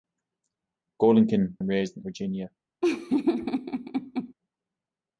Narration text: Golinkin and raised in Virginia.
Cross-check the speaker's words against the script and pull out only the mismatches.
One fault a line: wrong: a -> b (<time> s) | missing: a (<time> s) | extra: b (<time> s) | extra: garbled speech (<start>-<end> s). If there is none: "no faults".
no faults